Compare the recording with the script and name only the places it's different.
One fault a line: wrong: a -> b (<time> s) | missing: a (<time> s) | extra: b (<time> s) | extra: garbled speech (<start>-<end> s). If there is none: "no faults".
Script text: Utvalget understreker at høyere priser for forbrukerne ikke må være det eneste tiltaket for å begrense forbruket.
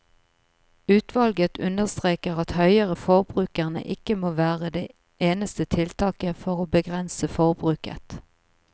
missing: priser for (3.0 s)